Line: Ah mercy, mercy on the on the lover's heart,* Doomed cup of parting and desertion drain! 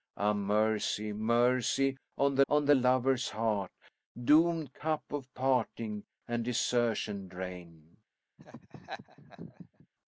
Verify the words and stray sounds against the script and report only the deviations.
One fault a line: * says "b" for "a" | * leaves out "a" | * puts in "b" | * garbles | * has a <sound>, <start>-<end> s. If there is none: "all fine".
* has a laugh, 8.4-9.9 s